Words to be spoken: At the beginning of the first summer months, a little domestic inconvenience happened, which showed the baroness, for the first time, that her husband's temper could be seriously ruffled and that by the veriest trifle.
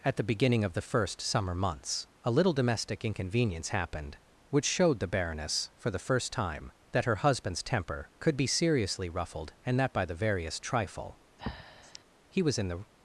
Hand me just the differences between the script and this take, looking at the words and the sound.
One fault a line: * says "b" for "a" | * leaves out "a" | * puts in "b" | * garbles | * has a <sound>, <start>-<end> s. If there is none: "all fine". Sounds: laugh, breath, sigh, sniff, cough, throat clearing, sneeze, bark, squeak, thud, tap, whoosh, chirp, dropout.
* has a breath, 11.4-12.0 s
* puts in "He was in the"